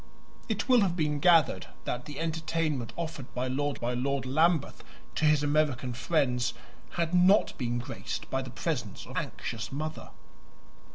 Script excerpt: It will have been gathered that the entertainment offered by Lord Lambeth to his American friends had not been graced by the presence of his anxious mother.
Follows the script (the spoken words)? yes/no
no